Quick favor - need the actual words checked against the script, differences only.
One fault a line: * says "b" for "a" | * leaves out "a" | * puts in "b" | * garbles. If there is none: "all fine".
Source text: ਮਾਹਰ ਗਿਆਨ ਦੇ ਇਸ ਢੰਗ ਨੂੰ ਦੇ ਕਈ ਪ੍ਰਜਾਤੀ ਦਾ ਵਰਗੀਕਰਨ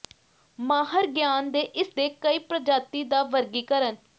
* leaves out "ਢੰਗ ਨੂੰ"